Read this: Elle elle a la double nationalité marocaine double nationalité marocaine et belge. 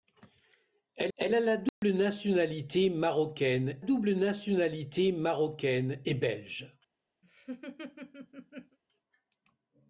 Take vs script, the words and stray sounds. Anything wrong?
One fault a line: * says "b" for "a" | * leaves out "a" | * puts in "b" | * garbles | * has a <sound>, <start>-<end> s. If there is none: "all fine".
* has a dropout, 1.7-1.8 s
* has a laugh, 7.2-8.8 s